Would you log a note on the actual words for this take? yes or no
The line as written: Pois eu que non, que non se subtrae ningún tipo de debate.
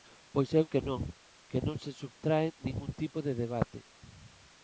no